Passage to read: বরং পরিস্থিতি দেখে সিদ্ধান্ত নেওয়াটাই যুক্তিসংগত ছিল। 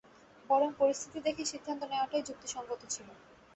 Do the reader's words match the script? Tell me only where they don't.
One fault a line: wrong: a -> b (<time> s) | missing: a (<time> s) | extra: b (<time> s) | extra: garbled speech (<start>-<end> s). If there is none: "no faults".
no faults